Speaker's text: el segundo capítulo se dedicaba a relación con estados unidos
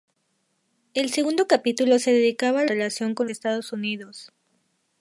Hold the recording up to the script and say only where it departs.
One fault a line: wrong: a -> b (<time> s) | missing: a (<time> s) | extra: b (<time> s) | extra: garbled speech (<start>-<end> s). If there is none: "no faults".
no faults